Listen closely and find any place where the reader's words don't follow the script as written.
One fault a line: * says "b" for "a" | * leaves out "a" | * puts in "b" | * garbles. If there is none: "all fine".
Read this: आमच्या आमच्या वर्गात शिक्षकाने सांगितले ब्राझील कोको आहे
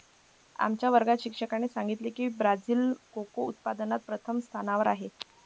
* leaves out "आमच्या"
* puts in "की"
* puts in "उत्पादनात प्रथम स्थानावर"